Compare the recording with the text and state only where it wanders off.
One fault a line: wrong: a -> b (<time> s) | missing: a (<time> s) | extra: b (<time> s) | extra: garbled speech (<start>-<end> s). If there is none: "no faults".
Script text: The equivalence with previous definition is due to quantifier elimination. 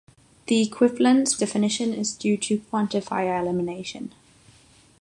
missing: with previous (1.4 s)